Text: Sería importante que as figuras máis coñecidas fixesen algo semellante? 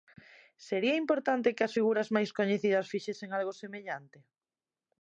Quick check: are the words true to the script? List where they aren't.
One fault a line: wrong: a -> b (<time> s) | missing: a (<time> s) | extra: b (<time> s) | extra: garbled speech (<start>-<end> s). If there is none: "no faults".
no faults